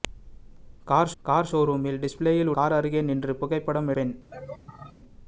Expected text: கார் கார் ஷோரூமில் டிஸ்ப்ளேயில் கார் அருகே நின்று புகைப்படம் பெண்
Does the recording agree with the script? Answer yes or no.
yes